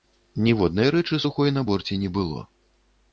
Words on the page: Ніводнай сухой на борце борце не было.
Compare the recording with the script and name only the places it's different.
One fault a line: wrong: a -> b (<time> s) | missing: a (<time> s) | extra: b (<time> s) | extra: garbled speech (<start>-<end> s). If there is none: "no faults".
extra: рэчы (0.9 s)
missing: борце (2.0 s)